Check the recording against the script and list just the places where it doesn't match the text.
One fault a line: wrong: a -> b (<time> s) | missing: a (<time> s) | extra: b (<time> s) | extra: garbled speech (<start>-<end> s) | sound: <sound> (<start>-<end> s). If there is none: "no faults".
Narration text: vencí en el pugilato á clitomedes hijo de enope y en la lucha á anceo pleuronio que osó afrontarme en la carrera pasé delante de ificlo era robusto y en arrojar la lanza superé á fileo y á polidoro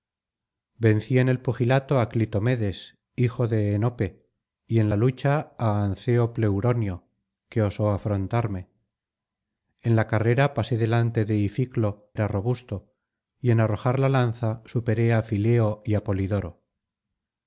no faults